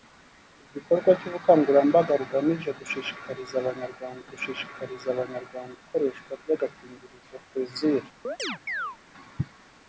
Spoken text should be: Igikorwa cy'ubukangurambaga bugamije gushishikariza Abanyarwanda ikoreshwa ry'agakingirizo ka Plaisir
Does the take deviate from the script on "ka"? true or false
true